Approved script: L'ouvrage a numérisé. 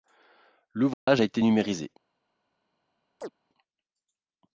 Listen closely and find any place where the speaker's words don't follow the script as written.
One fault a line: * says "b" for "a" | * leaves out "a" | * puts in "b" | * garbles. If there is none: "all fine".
* puts in "été"